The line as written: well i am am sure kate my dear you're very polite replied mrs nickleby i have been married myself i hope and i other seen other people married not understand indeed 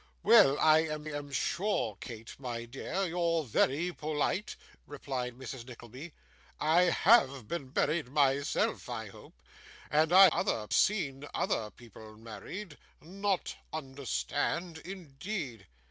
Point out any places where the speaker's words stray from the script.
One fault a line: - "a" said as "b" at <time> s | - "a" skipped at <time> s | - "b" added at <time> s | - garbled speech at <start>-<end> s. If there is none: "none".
none